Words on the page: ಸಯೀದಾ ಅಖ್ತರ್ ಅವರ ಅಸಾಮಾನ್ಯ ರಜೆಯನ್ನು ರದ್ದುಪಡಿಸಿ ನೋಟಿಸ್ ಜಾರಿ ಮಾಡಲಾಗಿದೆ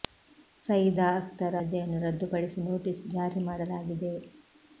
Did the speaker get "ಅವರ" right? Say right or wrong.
wrong